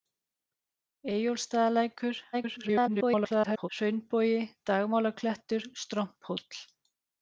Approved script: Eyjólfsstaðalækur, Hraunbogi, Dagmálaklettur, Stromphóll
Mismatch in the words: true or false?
true